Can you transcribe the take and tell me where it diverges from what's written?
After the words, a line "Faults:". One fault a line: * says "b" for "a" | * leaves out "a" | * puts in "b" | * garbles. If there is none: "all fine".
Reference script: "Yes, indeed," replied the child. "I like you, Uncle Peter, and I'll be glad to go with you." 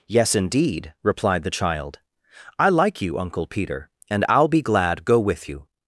"Yes, indeed," replied the child. "I like you, Uncle Peter, and I'll be glad go with you."
Faults:
* leaves out "to"